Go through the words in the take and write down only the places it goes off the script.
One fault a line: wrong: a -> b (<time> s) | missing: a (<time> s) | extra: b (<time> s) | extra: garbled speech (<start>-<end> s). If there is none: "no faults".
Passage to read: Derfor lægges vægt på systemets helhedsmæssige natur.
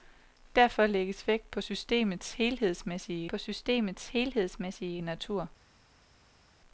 extra: på systemets helhedsmæssige (3.3 s)